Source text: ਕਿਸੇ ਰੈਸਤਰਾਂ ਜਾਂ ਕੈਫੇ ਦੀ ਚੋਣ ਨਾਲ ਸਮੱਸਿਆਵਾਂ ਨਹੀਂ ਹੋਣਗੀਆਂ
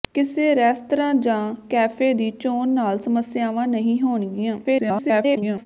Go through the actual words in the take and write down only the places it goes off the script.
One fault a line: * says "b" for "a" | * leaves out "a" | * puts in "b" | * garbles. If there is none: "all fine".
* garbles